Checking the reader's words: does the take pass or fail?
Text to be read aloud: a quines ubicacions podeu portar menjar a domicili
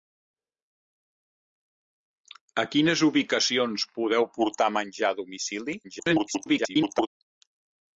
fail